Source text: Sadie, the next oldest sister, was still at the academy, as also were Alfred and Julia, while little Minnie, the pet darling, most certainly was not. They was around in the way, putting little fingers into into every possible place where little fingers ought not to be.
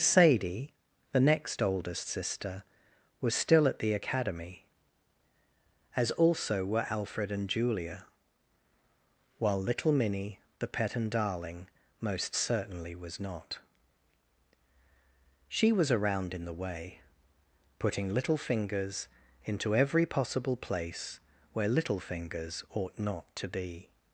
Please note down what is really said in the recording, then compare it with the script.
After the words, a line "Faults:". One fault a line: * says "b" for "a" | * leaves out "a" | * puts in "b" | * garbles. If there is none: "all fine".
Sadie, the next oldest sister, was still at the academy, as also were Alfred and Julia, while little Minnie, the pet and darling, most certainly was not. She was around in the way, putting little fingers into every possible place where little fingers ought not to be.
Faults:
* puts in "and"
* says "She" for "They"
* leaves out "into"